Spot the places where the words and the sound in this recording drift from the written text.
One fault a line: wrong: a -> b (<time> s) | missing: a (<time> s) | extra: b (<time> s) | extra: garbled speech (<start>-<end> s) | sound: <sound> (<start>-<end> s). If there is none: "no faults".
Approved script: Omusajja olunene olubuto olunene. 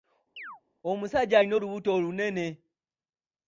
sound: chirp (0.4-0.6 s)
wrong: olunene -> alina (1.4 s)